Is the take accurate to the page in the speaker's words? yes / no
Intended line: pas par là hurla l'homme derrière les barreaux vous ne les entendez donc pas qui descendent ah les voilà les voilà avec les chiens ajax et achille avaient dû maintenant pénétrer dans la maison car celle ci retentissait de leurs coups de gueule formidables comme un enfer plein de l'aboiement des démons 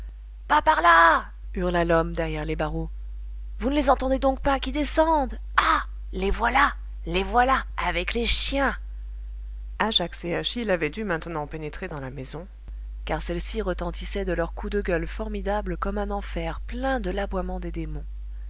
yes